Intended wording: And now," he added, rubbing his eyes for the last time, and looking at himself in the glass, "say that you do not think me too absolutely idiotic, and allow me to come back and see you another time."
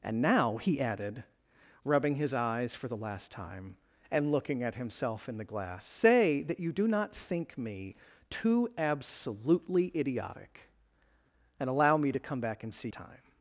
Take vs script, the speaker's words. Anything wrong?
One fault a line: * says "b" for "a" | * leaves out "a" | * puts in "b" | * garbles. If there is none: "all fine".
* leaves out "you another"